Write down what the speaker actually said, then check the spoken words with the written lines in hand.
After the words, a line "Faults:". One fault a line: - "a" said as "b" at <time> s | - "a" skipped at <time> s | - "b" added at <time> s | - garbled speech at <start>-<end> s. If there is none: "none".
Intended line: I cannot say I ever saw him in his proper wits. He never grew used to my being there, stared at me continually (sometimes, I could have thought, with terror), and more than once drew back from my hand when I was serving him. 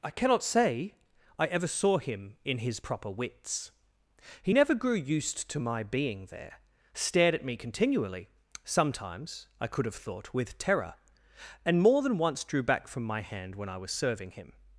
I cannot say I ever saw him in his proper wits. He never grew used to my being there, stared at me continually (sometimes, I could have thought, with terror), and more than once drew back from my hand when I was serving him.
Faults:
none